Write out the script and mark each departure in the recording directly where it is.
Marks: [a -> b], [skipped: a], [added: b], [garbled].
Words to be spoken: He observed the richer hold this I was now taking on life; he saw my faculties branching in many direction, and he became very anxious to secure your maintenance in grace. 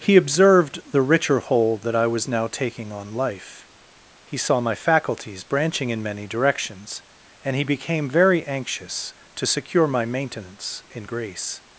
He observed the richer hold [this -> that] I was now taking on life; he saw my faculties branching in many [direction, -> directions] and he became very anxious to secure [your -> my] maintenance in grace.